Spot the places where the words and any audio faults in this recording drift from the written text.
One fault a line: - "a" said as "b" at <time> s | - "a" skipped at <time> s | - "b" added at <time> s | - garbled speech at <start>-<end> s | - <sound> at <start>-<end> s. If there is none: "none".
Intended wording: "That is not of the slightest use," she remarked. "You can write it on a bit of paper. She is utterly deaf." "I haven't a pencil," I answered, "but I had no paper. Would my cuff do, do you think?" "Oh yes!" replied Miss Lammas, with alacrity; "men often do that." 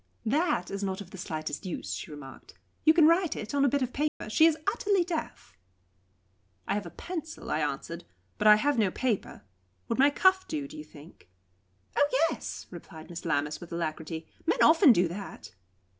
- dropout at 4.1-4.2 s
- "haven't" said as "have" at 6.7 s
- "had" said as "have" at 8.6 s